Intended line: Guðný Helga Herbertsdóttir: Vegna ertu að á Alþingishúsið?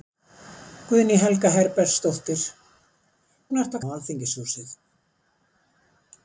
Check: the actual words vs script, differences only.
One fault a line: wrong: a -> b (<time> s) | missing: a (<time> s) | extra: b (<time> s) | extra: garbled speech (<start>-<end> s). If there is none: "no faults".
no faults